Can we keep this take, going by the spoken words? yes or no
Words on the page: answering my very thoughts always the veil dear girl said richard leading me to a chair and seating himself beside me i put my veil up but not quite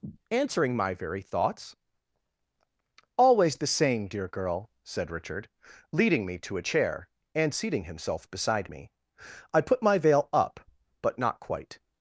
no